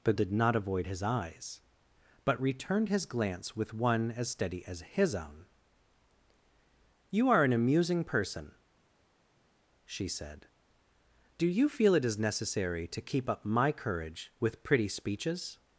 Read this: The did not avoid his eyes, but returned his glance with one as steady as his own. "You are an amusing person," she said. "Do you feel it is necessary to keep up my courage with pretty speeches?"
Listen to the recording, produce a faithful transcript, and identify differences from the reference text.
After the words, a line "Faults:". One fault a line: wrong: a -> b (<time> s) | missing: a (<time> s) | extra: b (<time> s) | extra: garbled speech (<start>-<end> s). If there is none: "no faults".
The did not avoid his eyes, but returned his glance with one as steady as his own. "You are an amusing person," she said. "Do you feel it is necessary to keep up my courage with pretty speeches?"
Faults:
no faults